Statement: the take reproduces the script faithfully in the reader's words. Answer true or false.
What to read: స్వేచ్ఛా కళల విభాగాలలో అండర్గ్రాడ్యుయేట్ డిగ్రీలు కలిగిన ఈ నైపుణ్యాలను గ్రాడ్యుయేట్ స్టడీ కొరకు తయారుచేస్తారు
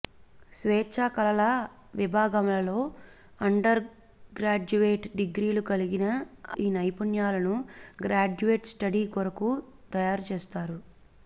true